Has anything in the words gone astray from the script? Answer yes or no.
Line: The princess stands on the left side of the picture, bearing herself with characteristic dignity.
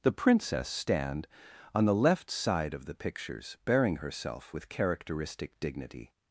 yes